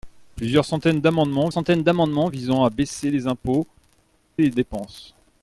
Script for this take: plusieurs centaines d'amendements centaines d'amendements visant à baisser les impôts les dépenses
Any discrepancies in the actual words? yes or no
no